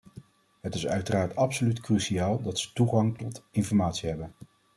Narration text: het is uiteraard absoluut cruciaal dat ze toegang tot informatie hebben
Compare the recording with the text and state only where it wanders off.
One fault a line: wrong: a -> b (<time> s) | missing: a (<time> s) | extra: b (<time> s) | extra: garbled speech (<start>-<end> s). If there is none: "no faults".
no faults